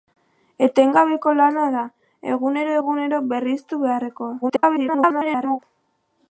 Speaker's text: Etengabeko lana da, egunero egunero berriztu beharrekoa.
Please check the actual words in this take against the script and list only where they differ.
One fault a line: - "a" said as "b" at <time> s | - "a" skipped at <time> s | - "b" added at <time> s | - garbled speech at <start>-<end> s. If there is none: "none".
- garbled speech at 4.4-5.6 s